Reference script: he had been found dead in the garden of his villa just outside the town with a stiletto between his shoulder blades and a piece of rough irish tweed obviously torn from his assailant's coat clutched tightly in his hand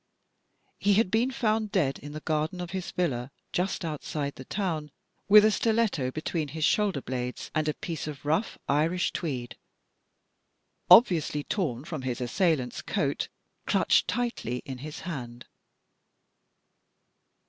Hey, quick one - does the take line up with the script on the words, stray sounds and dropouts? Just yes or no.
yes